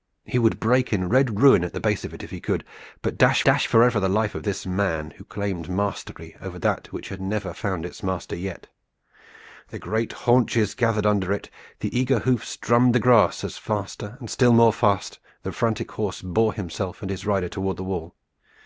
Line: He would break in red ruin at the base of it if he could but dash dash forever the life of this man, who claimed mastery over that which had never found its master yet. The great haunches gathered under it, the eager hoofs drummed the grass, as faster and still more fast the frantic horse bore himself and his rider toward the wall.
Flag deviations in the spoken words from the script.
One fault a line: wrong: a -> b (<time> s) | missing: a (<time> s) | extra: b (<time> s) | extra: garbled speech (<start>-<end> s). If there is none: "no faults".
no faults